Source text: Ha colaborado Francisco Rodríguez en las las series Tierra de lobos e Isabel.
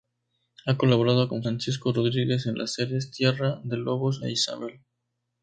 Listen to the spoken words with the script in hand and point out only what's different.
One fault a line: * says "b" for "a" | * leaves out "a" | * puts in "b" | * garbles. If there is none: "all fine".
* puts in "con"
* leaves out "las"